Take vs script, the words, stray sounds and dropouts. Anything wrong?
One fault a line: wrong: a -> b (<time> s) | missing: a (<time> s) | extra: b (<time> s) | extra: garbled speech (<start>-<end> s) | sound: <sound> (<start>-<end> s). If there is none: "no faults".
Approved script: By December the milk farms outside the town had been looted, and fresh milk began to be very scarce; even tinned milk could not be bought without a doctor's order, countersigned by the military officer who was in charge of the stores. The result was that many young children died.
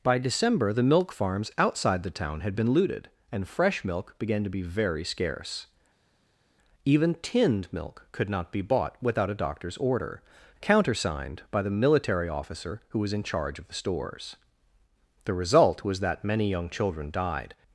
no faults